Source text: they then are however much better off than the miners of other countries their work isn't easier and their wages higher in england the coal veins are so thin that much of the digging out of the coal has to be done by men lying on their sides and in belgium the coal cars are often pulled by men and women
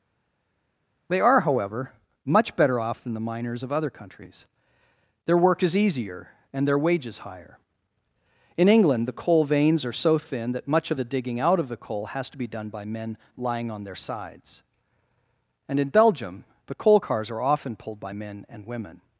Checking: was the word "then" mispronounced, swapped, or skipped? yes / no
yes